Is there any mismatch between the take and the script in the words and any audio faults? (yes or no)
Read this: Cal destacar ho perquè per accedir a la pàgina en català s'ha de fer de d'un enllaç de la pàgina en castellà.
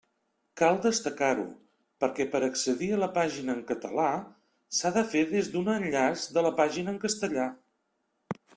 yes